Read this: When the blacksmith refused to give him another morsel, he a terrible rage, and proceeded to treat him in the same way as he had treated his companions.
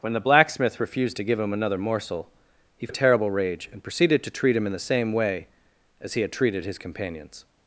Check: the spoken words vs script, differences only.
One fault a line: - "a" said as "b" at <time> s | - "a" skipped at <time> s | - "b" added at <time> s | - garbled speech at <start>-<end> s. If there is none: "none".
none